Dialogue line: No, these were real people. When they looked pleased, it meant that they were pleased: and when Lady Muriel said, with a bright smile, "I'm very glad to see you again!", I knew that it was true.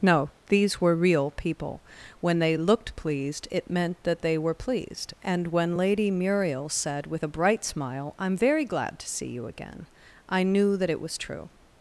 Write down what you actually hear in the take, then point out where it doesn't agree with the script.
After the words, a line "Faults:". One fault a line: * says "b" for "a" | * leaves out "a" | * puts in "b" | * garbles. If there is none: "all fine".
No, these were real people. When they looked pleased, it meant that they were pleased: and when Lady Muriel said, with a bright smile, "I'm very glad to see you again!", I knew that it was true.
Faults:
all fine